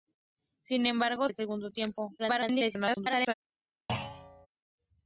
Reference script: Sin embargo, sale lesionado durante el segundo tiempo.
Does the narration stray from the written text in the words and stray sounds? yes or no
yes